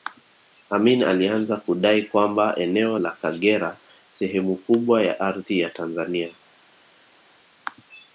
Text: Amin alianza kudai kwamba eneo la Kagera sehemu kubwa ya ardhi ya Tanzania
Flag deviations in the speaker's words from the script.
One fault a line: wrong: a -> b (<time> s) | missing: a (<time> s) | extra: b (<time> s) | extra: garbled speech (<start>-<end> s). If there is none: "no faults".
no faults